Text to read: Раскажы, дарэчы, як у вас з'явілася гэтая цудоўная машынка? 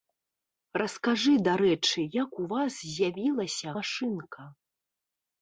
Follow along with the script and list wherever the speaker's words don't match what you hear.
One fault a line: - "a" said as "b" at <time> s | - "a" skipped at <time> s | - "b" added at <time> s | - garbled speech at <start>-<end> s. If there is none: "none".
- "гэтая цудоўная" skipped at 3.7 s